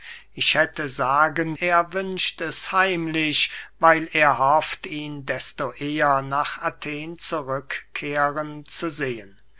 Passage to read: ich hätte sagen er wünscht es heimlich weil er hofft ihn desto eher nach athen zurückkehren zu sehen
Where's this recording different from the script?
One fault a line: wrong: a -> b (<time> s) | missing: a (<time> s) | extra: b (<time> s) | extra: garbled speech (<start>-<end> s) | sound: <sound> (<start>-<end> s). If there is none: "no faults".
no faults